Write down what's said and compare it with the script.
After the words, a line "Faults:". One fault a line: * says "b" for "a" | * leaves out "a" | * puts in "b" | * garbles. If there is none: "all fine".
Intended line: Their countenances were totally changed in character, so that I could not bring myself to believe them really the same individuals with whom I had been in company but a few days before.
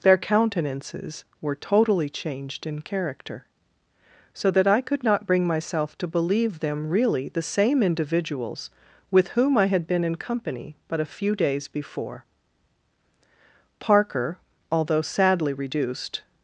Their countenances were totally changed in character, so that I could not bring myself to believe them really the same individuals with whom I had been in company but a few days before. Parker, although sadly reduced
Faults:
* puts in "Parker although sadly reduced"